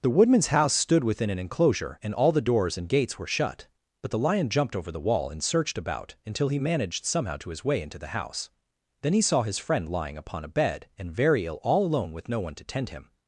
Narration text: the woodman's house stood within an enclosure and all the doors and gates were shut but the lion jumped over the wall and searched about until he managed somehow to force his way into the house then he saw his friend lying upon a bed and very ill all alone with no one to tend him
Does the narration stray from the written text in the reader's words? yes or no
yes